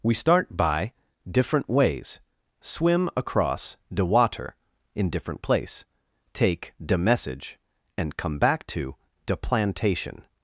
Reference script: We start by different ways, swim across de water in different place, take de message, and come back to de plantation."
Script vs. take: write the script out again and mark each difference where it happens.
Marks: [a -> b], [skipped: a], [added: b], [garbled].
We start by different ways, swim across de water in different place, take de message, and come back to de plantation."